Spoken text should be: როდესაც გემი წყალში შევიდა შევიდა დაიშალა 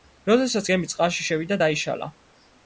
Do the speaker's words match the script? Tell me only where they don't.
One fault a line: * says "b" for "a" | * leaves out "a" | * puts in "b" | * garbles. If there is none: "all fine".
* leaves out "შევიდა"